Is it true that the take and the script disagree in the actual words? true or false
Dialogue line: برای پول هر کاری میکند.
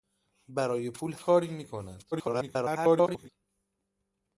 true